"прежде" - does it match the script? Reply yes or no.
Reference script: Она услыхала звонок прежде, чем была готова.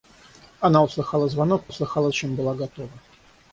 no